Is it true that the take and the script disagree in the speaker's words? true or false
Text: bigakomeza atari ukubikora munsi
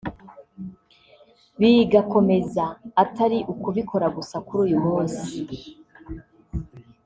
true